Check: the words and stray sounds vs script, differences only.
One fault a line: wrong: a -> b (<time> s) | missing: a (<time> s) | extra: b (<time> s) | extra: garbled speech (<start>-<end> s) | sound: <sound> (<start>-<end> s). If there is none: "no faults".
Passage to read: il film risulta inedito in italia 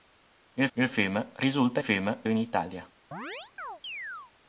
extra: il (0.7 s)
wrong: inedito -> film (1.8 s)
sound: chirp (3.1-4.3 s)